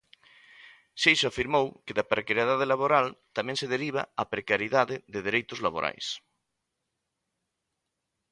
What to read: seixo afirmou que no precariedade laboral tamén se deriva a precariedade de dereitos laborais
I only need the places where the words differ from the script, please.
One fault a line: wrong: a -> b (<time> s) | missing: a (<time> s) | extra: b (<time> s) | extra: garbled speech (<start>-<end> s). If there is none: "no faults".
wrong: no -> da (2.0 s)